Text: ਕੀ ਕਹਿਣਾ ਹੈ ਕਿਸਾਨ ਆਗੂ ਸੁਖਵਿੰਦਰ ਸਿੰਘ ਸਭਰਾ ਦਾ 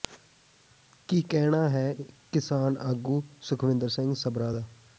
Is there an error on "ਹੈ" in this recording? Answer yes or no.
no